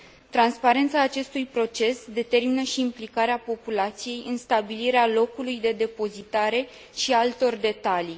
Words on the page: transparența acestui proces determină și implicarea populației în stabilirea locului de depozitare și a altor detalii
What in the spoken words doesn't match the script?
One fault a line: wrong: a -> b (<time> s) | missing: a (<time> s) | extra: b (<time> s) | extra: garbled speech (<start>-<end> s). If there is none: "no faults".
no faults